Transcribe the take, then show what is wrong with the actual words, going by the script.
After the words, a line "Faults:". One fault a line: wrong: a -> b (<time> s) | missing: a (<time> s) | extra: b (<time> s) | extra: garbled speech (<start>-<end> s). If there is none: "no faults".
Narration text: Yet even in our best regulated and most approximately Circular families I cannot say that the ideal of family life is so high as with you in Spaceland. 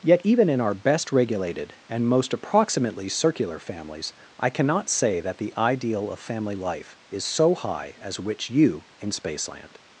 Yet even in our best regulated and most approximately Circular families I cannot say that the ideal of family life is so high as which you in Spaceland.
Faults:
wrong: with -> which (8.2 s)